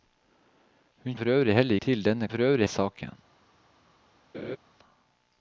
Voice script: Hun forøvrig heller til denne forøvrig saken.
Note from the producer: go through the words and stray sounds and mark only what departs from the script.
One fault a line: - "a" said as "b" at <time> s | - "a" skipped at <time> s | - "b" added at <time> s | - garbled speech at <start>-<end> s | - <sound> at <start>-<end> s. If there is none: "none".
- laugh at 4.3-4.6 s